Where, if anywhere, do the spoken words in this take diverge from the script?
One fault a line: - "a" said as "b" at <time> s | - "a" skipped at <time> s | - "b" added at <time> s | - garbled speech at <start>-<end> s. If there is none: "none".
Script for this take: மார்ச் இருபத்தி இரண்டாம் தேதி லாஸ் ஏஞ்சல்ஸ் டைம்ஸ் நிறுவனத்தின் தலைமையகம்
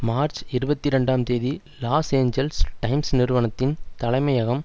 none